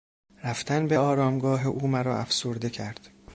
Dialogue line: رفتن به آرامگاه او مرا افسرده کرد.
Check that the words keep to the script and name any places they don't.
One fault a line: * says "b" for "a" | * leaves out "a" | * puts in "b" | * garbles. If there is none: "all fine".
all fine